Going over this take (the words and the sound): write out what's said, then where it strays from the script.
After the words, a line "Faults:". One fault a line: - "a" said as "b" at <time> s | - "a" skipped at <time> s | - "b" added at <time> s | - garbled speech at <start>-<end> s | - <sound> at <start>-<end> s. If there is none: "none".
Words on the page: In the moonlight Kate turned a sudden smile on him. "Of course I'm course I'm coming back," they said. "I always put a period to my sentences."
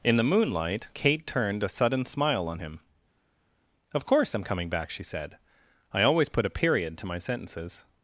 In the moonlight Kate turned a sudden smile on him. "Of course I'm coming back," she said. "I always put a period to my sentences."
Faults:
- "course I'm" skipped at 4.4 s
- "they" said as "she" at 4.9 s